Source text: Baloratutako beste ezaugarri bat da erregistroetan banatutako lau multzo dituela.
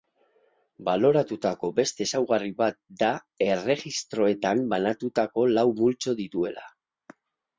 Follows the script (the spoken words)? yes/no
yes